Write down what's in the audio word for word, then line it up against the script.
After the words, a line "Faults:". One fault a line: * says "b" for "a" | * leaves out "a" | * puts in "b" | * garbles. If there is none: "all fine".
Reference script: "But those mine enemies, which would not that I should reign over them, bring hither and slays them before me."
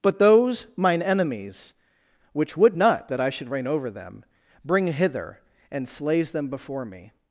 "But those mine enemies, which would not that I should reign over them, bring hither and slays them before me."
Faults:
all fine